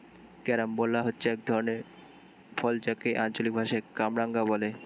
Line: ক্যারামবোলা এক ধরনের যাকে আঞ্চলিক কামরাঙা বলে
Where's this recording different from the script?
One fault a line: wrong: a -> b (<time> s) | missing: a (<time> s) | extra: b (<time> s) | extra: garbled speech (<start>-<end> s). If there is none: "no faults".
extra: হচ্ছে (1.0 s)
extra: ফল (2.6 s)
extra: ভাষায় (3.5 s)